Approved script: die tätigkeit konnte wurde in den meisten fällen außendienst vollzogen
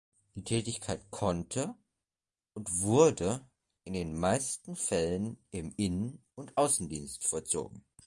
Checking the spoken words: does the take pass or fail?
fail